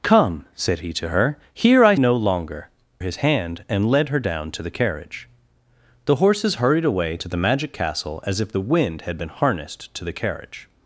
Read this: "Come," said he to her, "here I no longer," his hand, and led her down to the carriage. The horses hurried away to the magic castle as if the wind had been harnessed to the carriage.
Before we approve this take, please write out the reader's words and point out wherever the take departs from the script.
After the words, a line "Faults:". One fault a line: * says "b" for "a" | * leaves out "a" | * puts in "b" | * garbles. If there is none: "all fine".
"Come," said he to her, "here I no longer," his hand, and led her down to the carriage. The horses hurried away to the magic castle as if the wind had been harnessed to the carriage.
Faults:
all fine